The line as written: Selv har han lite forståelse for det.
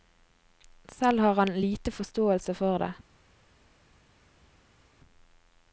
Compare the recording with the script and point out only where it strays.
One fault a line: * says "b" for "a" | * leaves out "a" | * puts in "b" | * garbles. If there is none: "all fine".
all fine